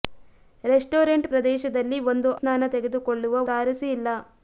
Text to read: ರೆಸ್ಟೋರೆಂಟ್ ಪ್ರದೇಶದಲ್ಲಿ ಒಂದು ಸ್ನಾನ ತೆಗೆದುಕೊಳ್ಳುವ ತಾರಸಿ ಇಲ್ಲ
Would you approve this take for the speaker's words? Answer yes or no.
yes